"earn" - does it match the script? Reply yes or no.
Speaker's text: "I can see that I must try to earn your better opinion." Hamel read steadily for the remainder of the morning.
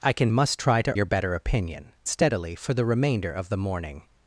no